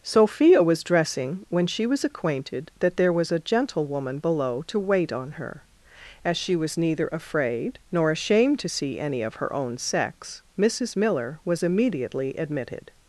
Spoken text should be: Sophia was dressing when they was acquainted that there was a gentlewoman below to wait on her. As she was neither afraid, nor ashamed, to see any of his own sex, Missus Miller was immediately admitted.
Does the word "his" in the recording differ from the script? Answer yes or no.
yes